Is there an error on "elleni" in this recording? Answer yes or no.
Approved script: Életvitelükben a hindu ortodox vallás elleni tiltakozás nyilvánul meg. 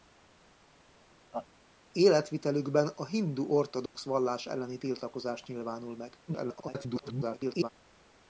no